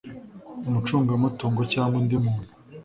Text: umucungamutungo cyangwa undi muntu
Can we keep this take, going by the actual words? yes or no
yes